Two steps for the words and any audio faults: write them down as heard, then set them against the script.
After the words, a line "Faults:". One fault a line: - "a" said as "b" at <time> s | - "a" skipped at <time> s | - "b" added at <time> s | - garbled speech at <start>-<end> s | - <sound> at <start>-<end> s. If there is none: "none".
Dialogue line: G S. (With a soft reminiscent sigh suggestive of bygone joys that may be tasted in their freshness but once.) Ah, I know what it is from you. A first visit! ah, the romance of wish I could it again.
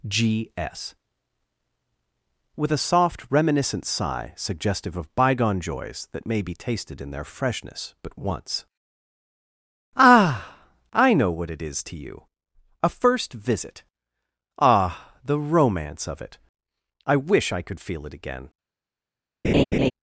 G S. (With a soft reminiscent sigh suggestive of bygone joys that may be tasted in their freshness but once.) Ah, I know what it is to you. A first visit! ah, the romance of it! I wish I could feel it again.
Faults:
- "from" said as "to" at 11.8 s
- "it I" added at 16.2 s
- "feel" added at 17.8 s
- laugh at 19.4-19.9 s